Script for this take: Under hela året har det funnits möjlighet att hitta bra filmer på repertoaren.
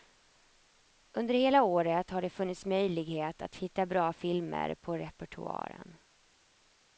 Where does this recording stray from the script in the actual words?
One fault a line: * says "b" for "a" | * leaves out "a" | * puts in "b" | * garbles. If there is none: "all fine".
all fine